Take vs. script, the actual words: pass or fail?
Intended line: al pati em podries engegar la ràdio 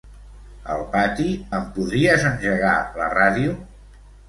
pass